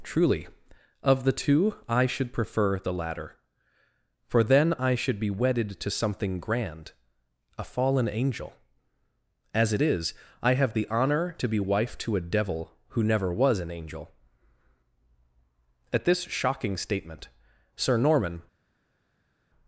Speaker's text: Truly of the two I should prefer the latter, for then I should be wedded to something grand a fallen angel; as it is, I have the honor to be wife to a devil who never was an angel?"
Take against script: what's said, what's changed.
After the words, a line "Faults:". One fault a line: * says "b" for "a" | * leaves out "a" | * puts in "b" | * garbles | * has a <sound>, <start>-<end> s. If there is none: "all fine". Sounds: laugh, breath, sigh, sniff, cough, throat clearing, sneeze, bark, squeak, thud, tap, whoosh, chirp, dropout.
Truly of the two I should prefer the latter, for then I should be wedded to something grand a fallen angel; as it is, I have the honor to be wife to a devil who never was an angel?" At this shocking statement Sir Norman
Faults:
* puts in "At this shocking statement Sir Norman"